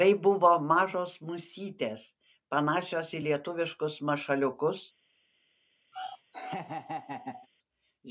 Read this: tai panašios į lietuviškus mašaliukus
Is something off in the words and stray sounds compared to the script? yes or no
yes